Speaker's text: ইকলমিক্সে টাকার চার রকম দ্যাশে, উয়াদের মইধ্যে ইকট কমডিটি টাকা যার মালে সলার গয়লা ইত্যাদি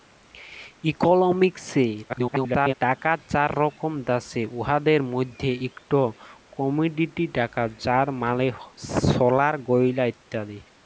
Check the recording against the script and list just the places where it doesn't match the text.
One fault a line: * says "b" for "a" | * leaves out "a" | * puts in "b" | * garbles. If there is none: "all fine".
* garbles